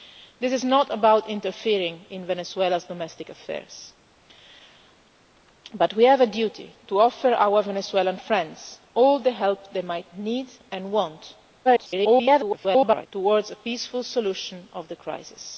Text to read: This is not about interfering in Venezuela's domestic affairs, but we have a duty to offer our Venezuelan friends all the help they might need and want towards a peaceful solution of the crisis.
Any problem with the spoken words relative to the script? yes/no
yes